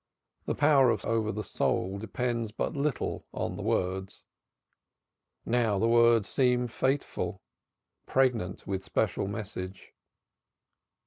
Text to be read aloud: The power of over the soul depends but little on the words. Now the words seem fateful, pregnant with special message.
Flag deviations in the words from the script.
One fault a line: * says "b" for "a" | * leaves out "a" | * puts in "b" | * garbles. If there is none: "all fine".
all fine